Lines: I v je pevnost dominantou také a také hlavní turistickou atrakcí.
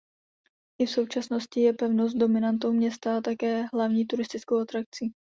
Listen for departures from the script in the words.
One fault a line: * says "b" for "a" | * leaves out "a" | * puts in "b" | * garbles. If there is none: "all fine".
* puts in "současnosti"
* says "města" for "také"